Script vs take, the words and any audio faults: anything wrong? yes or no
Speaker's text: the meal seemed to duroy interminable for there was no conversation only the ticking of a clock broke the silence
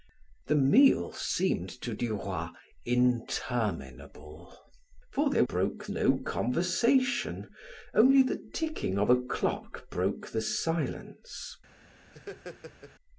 yes